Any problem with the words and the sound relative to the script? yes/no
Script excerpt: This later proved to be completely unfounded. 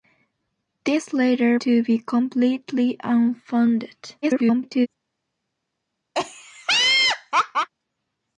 yes